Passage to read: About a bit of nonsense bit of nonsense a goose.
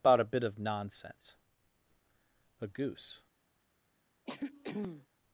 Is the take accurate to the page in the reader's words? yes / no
no